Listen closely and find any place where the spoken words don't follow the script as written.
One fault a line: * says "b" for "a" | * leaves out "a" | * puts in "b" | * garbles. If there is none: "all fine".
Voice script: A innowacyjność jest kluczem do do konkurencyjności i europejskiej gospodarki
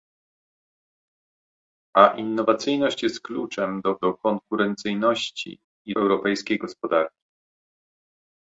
all fine